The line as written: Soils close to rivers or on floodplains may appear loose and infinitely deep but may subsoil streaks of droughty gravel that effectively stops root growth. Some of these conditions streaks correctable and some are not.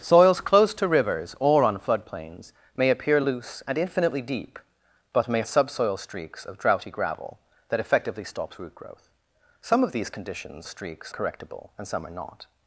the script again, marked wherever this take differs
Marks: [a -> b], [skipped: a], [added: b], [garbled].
Soils close to rivers or on floodplains may appear loose and infinitely deep but may subsoil streaks of droughty gravel that effectively stops root growth. Some of these conditions streaks correctable and some are not.